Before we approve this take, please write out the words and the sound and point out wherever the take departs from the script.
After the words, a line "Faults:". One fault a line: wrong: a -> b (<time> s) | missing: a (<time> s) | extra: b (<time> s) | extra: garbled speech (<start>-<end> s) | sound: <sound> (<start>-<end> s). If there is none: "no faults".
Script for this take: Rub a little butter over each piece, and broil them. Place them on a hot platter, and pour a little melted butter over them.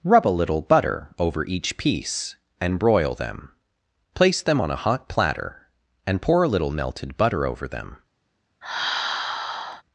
Rub a little butter over each piece, and broil them. Place them on a hot platter, and pour a little melted butter over them.
Faults:
sound: sigh (8.6-9.8 s)